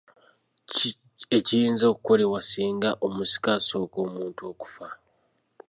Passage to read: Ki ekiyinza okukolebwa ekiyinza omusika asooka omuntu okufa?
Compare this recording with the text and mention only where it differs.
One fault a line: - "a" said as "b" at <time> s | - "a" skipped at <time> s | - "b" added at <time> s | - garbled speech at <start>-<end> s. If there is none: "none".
- "ekiyinza" said as "singa" at 2.5 s